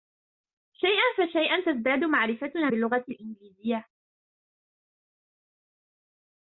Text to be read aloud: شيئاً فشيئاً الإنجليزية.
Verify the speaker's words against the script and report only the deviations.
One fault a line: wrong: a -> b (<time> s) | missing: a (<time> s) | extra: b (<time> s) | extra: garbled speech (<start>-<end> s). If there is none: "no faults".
extra: تزداد معرفتنا باللغة (1.7 s)